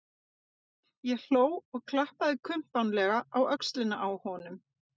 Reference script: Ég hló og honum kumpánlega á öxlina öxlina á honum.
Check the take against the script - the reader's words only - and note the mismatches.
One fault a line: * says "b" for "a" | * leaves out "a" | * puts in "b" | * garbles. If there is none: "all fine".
* says "klappaði" for "honum"
* leaves out "öxlina"